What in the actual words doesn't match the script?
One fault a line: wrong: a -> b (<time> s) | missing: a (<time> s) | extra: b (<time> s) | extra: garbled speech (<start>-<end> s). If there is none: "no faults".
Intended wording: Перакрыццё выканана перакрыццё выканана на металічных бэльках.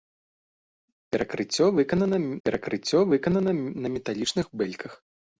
no faults